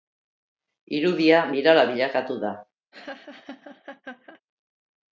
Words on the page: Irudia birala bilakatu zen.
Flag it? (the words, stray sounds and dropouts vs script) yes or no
yes